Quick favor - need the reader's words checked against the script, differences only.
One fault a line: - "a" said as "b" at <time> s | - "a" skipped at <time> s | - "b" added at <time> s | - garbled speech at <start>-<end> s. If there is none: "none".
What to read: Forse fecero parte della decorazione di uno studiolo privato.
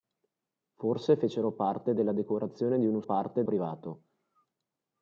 - "studiolo" said as "parte" at 3.0 s